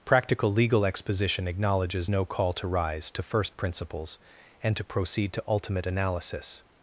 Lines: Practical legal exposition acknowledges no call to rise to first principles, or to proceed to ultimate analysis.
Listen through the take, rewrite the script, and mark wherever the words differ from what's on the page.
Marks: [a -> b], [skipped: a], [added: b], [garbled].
Practical legal exposition acknowledges no call to rise to first principles, [or -> and] to proceed to ultimate analysis.